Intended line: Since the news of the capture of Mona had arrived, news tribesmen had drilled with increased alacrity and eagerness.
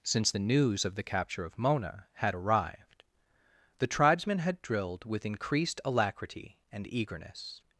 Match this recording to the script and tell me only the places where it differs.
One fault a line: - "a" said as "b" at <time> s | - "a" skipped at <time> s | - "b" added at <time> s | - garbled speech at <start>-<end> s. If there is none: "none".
- "news" said as "the" at 3.8 s